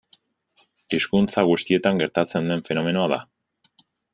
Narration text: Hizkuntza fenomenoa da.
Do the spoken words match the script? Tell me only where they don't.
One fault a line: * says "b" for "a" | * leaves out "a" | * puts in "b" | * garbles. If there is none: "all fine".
* puts in "guztietan gertatzen den"